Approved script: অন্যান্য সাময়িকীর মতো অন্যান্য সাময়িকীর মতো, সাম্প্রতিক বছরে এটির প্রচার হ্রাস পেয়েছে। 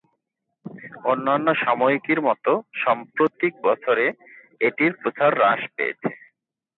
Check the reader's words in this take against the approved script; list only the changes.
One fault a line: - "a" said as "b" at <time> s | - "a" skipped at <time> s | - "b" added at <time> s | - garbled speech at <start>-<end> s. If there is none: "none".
- "অন্যান্য সাময়িকীর মতো" skipped at 2.5 s